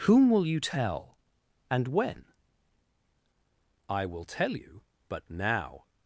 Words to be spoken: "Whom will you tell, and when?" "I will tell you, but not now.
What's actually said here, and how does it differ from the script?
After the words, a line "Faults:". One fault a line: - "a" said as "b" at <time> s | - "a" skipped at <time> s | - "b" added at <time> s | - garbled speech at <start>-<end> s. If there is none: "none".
"Whom will you tell, and when?" "I will tell you, but now.
Faults:
- "not" skipped at 5.2 s